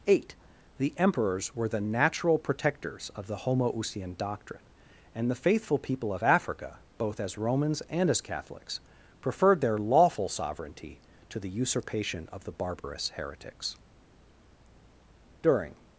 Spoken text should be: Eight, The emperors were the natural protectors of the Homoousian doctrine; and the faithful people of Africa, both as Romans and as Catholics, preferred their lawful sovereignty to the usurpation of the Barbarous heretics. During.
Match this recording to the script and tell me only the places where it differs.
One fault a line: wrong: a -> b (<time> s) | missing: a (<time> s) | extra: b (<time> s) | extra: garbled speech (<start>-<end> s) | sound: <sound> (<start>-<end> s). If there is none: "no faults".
sound: dropout (12.8-12.8 s)